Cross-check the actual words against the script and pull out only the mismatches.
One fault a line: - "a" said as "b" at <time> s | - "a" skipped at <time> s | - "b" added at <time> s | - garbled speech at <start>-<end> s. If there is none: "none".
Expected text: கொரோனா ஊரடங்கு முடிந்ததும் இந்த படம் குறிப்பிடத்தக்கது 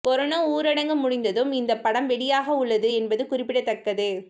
- "வெளியாக உள்ளது என்பது" added at 2.1 s